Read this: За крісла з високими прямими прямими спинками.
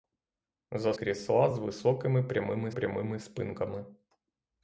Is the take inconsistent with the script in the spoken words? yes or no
no